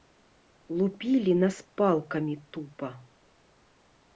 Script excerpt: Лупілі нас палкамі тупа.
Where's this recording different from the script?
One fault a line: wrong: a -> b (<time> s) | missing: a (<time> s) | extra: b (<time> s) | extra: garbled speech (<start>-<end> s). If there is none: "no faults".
no faults